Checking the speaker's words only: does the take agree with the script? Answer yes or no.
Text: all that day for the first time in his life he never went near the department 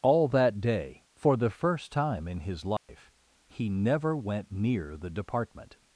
yes